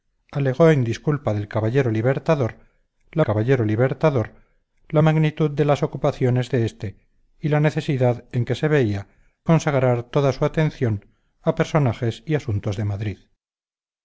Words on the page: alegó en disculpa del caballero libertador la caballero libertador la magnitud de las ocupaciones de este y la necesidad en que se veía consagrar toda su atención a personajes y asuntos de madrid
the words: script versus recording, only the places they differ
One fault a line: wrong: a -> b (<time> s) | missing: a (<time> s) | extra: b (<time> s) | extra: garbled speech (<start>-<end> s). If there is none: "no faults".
no faults